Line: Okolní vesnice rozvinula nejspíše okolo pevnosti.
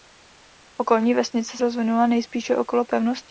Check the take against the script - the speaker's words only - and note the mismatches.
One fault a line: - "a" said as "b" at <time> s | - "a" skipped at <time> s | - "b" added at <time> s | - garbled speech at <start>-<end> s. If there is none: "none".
none